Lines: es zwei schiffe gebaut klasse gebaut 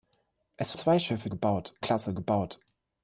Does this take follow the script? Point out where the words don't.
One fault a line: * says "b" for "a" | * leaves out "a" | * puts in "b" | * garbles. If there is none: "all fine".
all fine